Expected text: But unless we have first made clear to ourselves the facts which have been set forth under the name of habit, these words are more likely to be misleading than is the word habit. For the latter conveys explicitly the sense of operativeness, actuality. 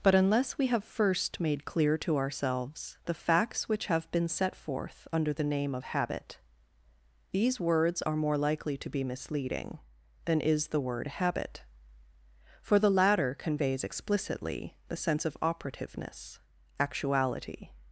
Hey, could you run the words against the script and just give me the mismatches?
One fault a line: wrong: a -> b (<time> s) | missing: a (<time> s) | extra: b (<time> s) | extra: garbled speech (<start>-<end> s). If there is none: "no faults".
no faults